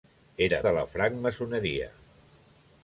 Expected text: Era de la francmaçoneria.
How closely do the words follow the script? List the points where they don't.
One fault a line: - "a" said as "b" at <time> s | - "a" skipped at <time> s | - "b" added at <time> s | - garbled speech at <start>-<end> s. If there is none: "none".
none